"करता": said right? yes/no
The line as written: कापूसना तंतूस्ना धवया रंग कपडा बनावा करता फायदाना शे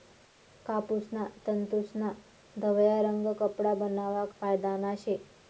no